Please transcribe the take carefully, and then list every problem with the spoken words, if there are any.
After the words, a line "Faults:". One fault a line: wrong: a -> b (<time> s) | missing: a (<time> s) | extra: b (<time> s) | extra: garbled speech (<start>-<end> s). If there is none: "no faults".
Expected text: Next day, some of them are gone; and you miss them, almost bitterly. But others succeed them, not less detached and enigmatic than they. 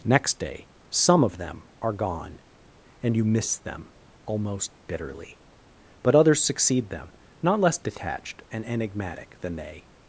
Next day, some of them are gone; and you miss them, almost bitterly. But others succeed them, not less detached and enigmatic than they.
Faults:
no faults